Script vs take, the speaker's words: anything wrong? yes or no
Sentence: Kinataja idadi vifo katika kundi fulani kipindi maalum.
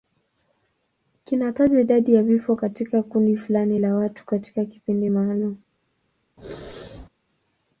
yes